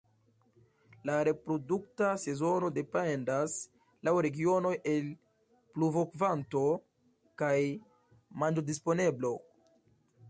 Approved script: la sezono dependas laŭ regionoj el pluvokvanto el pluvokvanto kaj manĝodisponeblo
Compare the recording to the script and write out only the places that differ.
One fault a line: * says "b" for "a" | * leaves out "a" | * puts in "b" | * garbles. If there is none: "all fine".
* puts in "reprodukta"
* leaves out "el pluvokvanto"